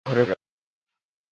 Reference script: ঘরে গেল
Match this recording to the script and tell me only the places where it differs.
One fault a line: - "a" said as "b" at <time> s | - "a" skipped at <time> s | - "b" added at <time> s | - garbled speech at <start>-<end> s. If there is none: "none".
none